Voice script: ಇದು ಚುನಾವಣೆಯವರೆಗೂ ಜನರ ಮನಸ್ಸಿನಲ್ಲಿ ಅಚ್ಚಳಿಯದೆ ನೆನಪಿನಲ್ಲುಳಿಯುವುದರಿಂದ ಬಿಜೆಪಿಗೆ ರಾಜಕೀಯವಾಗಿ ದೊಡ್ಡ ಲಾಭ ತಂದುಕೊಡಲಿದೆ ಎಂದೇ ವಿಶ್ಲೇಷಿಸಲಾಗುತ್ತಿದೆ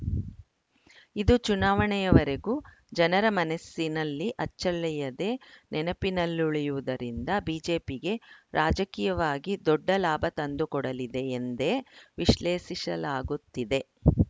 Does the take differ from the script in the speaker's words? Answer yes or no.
no